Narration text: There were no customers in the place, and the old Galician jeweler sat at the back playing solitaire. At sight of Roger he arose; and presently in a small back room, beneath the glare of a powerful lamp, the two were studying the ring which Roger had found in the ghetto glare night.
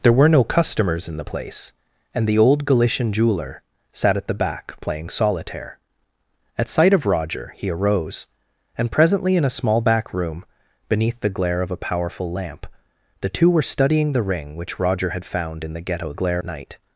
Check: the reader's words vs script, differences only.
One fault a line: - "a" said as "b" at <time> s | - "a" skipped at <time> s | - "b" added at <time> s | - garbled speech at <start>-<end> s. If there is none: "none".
none